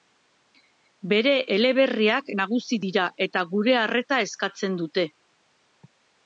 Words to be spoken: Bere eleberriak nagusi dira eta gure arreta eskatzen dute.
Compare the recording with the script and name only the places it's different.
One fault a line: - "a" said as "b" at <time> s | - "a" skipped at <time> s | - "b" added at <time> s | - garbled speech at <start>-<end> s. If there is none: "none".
none